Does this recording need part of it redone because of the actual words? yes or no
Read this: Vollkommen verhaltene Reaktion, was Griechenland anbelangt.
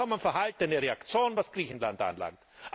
no